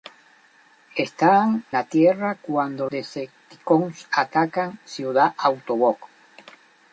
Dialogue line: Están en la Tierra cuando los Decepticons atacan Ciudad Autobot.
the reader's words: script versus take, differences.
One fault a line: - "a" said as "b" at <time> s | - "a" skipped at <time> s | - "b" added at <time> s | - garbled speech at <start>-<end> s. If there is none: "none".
- "en" skipped at 1.6 s
- "los" skipped at 2.9 s